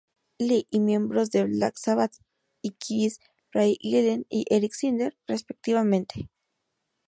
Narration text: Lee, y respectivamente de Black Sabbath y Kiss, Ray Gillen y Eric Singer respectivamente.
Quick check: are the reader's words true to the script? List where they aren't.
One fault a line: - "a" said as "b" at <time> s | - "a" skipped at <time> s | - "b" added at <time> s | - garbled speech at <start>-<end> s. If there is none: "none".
- "respectivamente" said as "miembros" at 0.8 s